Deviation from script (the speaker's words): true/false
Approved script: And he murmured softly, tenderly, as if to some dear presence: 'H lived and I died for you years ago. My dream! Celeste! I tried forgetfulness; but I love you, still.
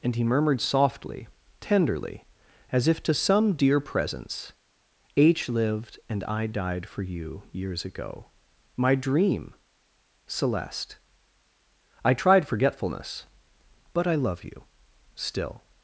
false